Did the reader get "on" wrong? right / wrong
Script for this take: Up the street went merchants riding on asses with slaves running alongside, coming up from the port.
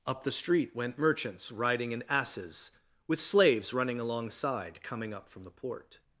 wrong